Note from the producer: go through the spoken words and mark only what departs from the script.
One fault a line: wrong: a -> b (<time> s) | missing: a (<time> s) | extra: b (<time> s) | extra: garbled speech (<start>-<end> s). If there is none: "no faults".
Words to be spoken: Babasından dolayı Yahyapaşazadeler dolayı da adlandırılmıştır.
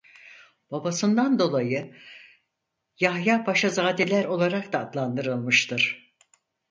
wrong: dolayı -> olarak (4.2 s)